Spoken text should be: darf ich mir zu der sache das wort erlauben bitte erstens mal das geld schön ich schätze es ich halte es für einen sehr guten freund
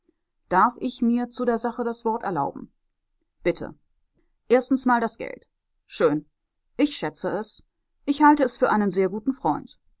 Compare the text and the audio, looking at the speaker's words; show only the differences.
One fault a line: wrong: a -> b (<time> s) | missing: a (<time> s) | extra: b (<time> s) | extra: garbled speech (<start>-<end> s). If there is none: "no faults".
no faults